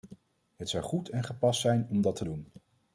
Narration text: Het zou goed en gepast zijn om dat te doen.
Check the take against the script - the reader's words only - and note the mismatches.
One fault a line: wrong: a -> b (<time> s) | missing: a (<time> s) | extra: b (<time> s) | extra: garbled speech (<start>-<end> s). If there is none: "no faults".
no faults